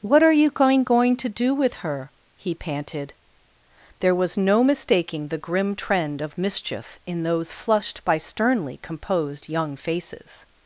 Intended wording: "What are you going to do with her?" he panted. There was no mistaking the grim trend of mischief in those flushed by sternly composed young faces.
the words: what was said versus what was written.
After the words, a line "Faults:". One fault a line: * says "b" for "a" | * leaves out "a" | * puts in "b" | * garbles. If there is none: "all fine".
"What are you going going to do with her?" he panted. There was no mistaking the grim trend of mischief in those flushed by sternly composed young faces.
Faults:
* puts in "going"